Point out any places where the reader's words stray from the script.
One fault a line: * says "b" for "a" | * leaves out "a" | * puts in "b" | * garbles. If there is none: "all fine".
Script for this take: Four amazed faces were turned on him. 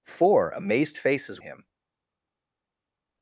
* leaves out "were turned on"